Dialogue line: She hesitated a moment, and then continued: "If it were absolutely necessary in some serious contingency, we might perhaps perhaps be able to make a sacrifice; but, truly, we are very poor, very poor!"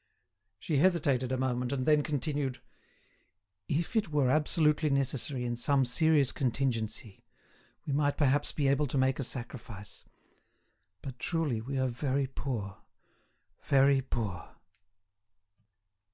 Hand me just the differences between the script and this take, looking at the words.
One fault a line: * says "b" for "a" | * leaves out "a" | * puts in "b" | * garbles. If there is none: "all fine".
* leaves out "perhaps"